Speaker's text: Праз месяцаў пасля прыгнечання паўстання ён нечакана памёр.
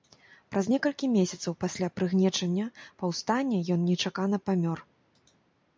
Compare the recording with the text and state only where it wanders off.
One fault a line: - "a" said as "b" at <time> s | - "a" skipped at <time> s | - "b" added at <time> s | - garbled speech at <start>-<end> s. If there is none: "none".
- "некалькі" added at 0.7 s